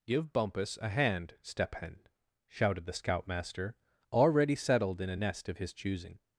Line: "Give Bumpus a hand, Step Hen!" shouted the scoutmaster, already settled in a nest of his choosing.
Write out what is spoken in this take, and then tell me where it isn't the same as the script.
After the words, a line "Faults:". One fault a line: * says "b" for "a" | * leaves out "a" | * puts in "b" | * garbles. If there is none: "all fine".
"Give Bumpus a hand, Step Hen!" shouted the scoutmaster, already settled in a nest of his choosing.
Faults:
all fine